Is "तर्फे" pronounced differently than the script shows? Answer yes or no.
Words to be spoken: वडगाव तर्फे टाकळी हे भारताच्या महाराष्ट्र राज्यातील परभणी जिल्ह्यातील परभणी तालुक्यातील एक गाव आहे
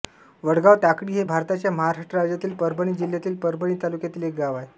yes